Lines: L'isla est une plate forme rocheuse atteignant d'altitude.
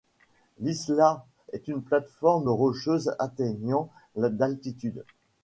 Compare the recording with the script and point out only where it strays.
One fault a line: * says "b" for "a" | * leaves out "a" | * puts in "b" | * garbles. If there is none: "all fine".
all fine